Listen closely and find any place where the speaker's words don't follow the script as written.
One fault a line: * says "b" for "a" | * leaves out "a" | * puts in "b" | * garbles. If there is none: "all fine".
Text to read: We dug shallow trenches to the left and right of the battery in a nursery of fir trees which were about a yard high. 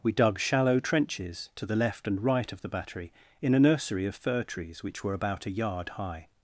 all fine